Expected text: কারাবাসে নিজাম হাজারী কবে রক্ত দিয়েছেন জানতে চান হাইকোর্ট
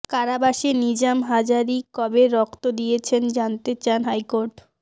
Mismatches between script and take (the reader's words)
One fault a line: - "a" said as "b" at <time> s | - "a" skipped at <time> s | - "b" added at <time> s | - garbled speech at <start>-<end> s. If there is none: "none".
none